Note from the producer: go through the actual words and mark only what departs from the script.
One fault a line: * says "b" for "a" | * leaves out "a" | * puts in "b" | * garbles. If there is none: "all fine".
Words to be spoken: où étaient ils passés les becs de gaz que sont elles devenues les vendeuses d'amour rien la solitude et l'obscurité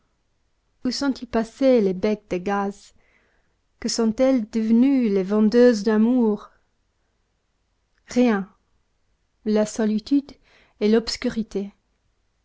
* says "sont" for "étaient"